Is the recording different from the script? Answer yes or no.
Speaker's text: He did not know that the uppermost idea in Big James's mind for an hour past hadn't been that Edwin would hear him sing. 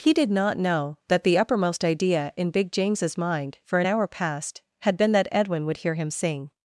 yes